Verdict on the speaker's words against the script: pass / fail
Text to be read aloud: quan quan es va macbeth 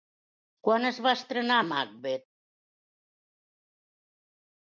fail